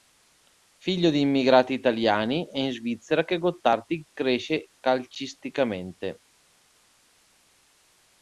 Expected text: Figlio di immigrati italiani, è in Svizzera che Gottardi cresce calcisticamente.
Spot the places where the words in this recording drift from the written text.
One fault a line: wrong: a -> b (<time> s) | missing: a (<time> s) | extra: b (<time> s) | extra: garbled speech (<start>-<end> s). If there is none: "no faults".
no faults